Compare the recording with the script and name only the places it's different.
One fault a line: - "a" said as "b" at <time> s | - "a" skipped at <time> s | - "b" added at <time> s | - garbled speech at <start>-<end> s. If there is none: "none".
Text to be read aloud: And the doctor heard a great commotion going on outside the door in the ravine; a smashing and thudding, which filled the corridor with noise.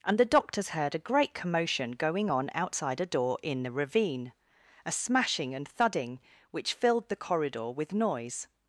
- "doctor" said as "doctors" at 0.2 s
- "the" said as "a" at 3.0 s